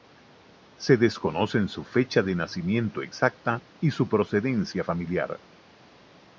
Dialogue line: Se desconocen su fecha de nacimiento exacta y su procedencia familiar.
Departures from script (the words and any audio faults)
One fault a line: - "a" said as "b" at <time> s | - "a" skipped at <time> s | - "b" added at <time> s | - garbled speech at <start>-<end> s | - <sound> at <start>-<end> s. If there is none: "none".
none